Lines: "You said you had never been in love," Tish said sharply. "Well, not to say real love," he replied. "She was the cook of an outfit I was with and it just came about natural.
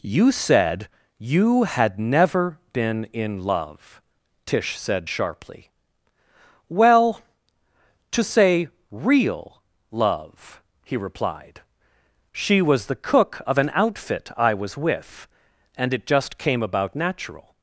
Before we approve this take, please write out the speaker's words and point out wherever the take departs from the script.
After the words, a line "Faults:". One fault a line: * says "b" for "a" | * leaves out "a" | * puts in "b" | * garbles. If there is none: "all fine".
"You said you had never been in love," Tish said sharply. "Well, to say real love," he replied. "She was the cook of an outfit I was with and it just came about natural.
Faults:
* leaves out "not"